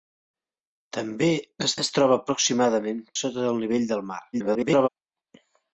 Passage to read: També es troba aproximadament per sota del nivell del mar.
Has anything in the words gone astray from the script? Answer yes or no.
yes